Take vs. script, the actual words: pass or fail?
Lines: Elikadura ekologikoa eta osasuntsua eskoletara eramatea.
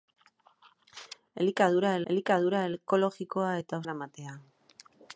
fail